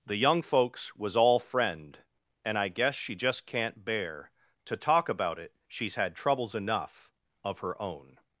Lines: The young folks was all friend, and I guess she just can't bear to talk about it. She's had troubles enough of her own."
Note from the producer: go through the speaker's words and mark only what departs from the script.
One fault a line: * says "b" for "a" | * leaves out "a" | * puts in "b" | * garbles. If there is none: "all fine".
all fine